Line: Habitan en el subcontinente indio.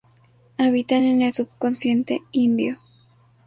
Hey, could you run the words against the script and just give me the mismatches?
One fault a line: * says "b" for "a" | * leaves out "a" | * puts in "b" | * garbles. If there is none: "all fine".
all fine